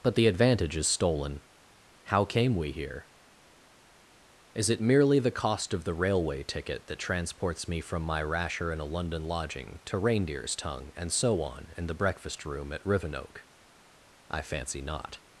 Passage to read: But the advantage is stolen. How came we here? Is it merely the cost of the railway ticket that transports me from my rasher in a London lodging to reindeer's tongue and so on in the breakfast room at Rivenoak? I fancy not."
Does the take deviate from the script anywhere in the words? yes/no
no